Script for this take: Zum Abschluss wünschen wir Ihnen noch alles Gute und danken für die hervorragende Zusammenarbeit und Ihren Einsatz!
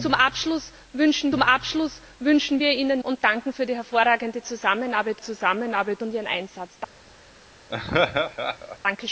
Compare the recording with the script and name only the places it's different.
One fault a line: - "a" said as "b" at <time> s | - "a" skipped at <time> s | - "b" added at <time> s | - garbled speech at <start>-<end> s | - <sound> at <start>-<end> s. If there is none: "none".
- "wir Ihnen noch alles Gute" said as "zum Abschluss wünschen wir Ihnen" at 1.3 s
- "Zusammenarbeit" added at 5.2 s
- laugh at 7.7-8.8 s